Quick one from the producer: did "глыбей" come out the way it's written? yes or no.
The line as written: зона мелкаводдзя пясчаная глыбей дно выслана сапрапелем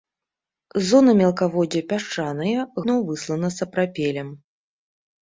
no